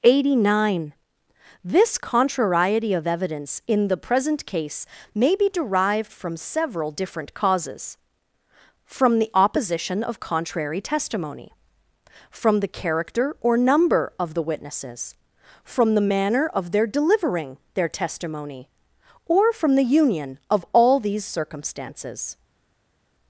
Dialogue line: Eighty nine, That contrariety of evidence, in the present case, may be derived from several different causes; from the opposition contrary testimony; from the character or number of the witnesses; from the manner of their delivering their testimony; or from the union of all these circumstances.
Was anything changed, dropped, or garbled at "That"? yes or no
yes